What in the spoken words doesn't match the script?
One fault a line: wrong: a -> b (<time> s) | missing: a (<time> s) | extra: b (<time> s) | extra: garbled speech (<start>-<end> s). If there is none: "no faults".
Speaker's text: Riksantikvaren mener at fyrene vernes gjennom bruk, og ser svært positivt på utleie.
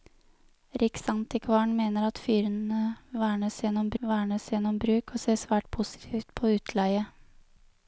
extra: vernes gjennom (4.0 s)